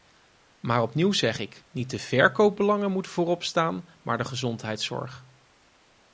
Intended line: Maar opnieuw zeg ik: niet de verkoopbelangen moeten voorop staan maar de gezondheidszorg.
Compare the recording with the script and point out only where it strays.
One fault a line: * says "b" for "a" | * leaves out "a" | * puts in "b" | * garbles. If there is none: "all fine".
all fine